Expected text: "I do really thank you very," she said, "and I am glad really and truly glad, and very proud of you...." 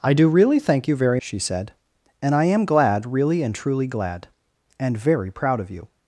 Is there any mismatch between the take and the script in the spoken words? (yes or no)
no